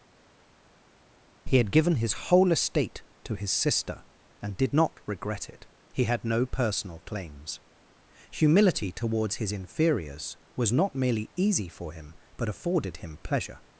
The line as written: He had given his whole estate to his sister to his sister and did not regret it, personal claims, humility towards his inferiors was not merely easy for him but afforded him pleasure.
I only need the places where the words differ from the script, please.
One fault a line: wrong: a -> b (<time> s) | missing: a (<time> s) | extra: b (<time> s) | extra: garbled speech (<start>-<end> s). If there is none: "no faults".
missing: to his sister (4.0 s)
extra: he had no (5.9 s)